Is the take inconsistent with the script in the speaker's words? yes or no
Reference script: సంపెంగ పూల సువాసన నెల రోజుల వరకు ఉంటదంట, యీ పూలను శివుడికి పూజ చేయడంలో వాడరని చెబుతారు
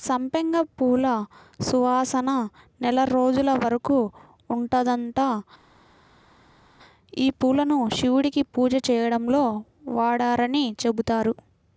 no